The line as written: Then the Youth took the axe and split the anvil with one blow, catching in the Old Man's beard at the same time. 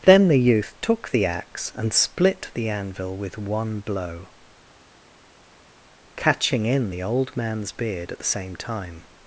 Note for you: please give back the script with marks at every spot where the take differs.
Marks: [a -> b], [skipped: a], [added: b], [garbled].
Then the Youth took the axe and split the anvil with one blow, catching in the Old Man's beard at the same time.